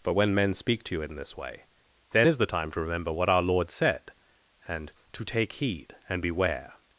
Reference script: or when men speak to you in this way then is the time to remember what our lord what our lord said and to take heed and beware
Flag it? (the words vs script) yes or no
yes